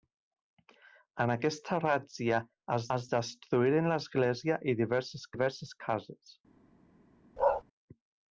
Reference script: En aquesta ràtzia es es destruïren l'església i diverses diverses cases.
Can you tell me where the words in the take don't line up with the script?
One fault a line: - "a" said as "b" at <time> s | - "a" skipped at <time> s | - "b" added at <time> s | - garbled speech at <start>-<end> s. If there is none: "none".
none